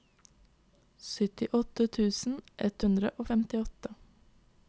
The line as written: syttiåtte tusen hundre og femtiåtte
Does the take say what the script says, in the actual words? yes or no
no